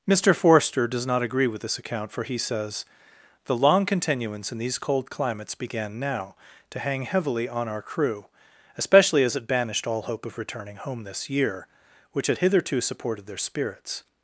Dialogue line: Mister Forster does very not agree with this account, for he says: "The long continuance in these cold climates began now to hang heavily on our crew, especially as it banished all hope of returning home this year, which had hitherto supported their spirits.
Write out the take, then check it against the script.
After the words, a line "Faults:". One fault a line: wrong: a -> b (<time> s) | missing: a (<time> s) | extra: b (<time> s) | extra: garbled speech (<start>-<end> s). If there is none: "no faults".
Mister Forster does not agree with this account, for he says: "The long continuance in these cold climates began now to hang heavily on our crew, especially as it banished all hope of returning home this year, which had hitherto supported their spirits.
Faults:
missing: very (1.1 s)